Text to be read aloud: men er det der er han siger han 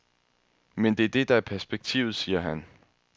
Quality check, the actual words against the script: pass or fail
fail